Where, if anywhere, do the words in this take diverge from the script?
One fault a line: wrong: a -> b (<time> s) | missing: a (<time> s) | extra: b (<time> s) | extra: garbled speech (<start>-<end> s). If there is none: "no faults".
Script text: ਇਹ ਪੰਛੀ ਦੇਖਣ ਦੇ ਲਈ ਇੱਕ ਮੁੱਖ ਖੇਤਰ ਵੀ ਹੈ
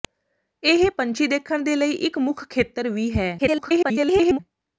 extra: garbled speech (3.4-4.4 s)